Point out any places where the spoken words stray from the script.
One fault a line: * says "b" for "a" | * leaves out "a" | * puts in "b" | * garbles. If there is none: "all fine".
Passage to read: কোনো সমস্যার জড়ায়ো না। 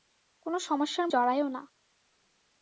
all fine